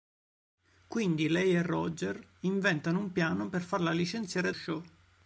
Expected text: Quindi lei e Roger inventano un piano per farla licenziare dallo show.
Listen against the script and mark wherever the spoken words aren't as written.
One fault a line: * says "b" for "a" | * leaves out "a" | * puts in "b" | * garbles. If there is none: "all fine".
* leaves out "dallo"